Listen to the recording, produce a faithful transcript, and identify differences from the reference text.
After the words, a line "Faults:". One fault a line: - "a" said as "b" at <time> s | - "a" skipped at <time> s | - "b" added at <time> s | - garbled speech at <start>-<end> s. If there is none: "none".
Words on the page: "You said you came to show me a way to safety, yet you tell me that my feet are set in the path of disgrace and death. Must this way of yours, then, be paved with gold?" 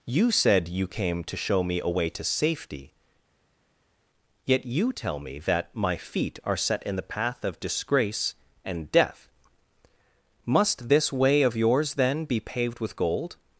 "You said you came to show me a way to safety, yet you tell me that my feet are set in the path of disgrace and death. Must this way of yours, then, be paved with gold?"
Faults:
none